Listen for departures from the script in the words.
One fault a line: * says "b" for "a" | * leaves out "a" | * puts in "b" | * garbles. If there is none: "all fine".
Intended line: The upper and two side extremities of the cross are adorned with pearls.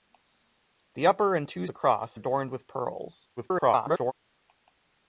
* leaves out "side extremities of"
* leaves out "are"
* garbles